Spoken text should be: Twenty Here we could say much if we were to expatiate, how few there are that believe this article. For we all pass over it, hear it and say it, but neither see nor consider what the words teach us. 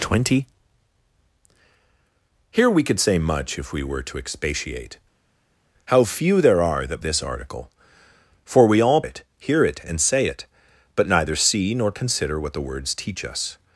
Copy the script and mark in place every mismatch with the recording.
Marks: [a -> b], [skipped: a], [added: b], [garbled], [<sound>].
Twenty Here we could say much if we were to expatiate, how few there are that [skipped: believe] this article. For we all [skipped: pass over] it, hear it and say it, but neither see nor consider what the words teach us.